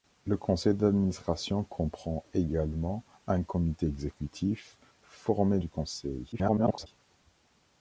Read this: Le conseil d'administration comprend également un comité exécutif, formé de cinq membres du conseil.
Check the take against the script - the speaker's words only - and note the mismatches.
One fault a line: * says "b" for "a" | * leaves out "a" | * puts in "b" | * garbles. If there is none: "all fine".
* leaves out "de cinq membres"
* garbles